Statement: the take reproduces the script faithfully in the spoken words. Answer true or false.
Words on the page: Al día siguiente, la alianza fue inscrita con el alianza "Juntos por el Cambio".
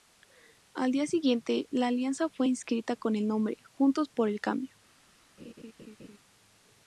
false